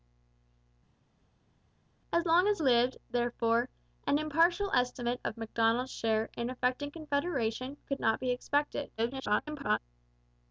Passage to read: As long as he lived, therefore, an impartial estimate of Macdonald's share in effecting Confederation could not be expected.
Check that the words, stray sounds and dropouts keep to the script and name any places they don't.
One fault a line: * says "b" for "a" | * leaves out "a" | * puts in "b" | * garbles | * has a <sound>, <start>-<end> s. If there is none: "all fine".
* leaves out "he"
* garbles